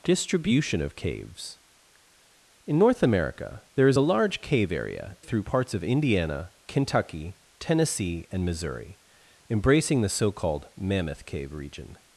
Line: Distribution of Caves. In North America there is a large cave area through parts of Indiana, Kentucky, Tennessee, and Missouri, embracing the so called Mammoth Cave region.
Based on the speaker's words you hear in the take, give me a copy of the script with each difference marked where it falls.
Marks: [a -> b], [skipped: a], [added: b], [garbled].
Distribution of Caves. In North America there is a large cave area through parts of Indiana, Kentucky, Tennessee, and Missouri, embracing the so called Mammoth Cave region.